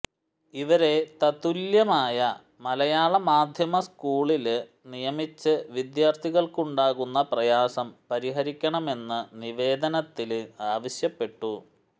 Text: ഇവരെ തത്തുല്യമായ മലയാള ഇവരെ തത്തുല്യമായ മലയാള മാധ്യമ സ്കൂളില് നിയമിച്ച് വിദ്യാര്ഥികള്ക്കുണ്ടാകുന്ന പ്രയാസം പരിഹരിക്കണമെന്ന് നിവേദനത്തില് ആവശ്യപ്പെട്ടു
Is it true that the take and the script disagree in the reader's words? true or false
true